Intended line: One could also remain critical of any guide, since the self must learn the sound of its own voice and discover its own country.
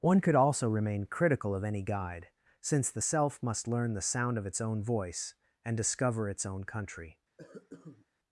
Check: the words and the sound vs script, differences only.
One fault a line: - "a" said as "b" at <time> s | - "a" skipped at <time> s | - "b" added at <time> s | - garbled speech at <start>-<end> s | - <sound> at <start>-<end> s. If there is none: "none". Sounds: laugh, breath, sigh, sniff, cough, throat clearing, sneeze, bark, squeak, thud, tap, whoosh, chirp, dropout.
- cough at 7.4-8.1 s